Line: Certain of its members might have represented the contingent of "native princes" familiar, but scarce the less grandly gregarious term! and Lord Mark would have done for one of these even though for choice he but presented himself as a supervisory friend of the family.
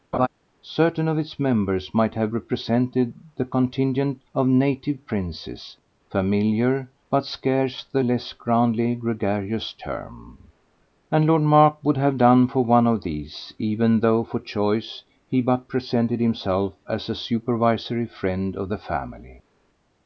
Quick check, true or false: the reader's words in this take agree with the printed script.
true